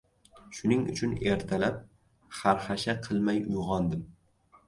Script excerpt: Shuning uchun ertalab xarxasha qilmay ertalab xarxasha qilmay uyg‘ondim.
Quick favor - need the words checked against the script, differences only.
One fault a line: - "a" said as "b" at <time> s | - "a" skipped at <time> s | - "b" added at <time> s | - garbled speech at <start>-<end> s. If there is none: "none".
- "ertalab xarxasha qilmay" skipped at 3.4 s